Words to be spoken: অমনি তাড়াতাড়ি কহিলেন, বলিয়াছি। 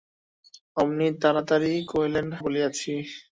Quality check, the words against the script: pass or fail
pass